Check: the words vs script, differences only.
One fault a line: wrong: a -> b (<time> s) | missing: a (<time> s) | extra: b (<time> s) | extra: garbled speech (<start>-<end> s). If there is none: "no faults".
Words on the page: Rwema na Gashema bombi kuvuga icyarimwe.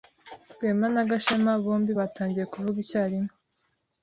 extra: batangiye (2.0 s)